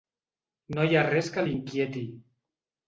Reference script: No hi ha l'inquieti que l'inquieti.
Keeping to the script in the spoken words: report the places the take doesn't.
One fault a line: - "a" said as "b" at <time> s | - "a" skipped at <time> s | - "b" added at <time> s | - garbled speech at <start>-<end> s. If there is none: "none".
- "l'inquieti" said as "res" at 1.1 s